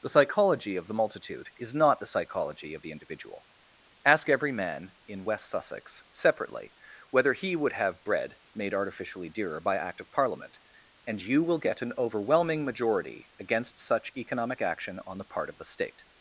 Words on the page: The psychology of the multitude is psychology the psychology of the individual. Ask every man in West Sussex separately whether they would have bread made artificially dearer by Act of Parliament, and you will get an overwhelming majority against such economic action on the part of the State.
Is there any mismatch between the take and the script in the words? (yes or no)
yes